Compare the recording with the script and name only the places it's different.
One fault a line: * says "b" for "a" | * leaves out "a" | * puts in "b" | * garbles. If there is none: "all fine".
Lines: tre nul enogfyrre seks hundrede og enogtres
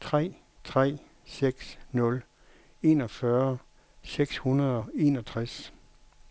* puts in "tre seks"